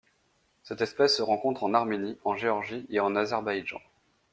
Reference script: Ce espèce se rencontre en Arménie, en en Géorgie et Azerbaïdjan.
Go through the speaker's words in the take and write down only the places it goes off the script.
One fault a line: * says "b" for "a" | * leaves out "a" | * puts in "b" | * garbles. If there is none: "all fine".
* says "Cette" for "Ce"
* leaves out "en"
* puts in "en"